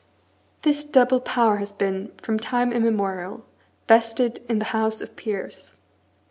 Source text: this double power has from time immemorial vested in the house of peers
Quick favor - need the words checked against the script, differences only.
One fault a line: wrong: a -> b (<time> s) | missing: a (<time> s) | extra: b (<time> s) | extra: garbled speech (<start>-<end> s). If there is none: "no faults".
extra: been (1.7 s)